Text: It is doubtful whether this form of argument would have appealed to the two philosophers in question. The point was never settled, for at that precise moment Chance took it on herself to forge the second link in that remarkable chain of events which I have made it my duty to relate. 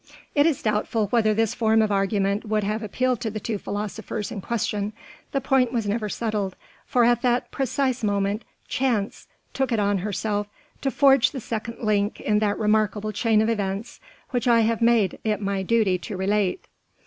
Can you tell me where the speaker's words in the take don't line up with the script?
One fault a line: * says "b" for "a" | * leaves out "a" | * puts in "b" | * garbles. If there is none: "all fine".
all fine